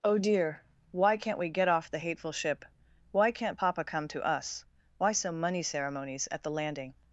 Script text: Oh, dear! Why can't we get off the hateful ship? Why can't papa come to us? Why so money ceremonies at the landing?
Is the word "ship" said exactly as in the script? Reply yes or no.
yes